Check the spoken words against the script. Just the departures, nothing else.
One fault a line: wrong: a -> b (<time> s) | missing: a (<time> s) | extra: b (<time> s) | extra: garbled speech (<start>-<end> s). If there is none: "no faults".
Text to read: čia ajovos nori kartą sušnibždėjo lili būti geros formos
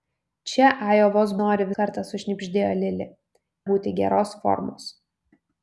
no faults